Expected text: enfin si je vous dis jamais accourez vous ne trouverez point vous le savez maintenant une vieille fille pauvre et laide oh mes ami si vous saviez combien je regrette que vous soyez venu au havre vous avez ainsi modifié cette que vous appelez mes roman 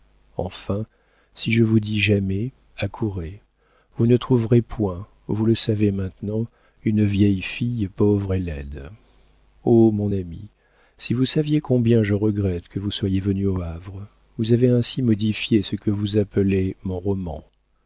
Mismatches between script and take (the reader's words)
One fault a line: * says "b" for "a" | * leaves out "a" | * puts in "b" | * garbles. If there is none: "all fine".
* says "mon" for "mes"
* says "ce" for "cette"
* says "mon" for "mes"